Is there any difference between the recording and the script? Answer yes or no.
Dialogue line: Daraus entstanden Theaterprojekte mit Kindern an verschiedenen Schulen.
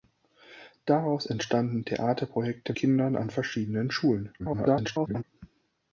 yes